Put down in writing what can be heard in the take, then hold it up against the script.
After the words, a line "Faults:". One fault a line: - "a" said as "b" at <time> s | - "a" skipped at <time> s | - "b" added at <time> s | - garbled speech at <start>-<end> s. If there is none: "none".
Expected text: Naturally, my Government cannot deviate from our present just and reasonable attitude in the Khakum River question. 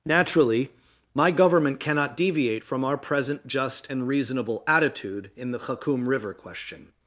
Naturally, my Government cannot deviate from our present just and reasonable attitude in the Khakum River question.
Faults:
none